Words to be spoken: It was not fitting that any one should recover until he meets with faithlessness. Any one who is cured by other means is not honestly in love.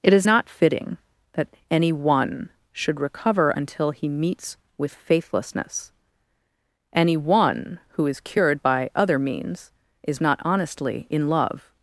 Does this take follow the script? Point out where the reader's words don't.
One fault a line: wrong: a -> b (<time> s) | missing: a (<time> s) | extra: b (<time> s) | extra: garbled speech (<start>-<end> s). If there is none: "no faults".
wrong: was -> is (0.1 s)